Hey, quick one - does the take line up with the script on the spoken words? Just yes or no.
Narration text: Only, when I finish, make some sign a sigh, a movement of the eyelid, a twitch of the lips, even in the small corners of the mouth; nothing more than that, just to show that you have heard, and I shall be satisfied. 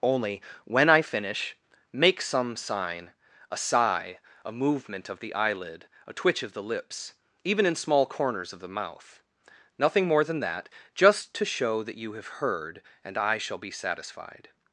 no